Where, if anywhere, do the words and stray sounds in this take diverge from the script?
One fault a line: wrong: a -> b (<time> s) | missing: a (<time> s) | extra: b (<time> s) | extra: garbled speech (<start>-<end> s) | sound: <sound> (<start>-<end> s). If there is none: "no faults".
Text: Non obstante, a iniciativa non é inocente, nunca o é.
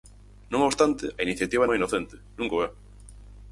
missing: non (1.6 s)